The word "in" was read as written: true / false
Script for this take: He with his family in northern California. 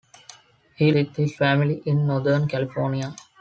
true